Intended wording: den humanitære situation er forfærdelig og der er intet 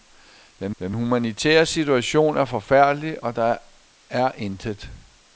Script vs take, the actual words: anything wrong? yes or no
yes